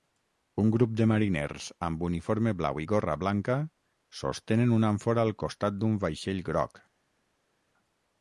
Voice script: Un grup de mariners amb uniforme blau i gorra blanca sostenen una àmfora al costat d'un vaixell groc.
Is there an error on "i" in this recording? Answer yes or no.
no